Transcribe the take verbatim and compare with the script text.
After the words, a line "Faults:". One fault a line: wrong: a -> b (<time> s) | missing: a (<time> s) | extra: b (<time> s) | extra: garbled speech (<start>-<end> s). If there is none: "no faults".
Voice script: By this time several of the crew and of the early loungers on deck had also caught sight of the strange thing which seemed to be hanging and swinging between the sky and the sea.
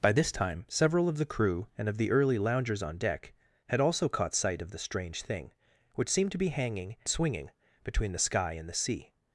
By this time several of the crew and of the early loungers on deck had also caught sight of the strange thing which seemed to be hanging swinging between the sky and the sea.
Faults:
missing: and (7.0 s)